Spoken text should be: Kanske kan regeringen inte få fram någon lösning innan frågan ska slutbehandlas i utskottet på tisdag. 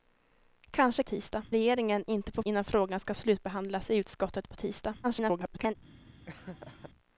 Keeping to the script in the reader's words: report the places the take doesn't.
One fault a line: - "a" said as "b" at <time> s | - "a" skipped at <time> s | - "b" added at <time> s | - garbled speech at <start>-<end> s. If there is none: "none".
- "kan" said as "tisdag" at 1.0 s
- "fram någon lösning" skipped at 2.4 s
- garbled speech at 5.0-5.8 s